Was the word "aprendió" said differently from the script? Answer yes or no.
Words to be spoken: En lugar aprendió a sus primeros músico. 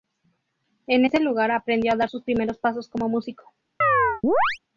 no